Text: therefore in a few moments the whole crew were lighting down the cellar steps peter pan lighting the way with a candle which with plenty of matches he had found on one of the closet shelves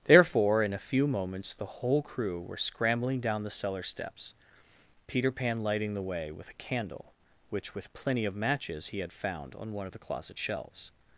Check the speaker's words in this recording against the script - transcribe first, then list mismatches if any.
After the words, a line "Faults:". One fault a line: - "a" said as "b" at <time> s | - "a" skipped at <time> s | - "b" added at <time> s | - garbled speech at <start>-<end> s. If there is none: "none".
therefore in a few moments the whole crew were scrambling down the cellar steps peter pan lighting the way with a candle which with plenty of matches he had found on one of the closet shelves
Faults:
- "lighting" said as "scrambling" at 2.6 s